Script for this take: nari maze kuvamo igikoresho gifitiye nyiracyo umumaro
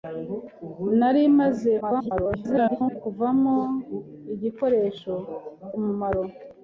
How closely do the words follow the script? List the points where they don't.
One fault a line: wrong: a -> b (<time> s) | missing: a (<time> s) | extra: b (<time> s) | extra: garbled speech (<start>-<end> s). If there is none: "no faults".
extra: garbled speech (1.8-3.0 s)
missing: gifitiye nyiracyo (5.1 s)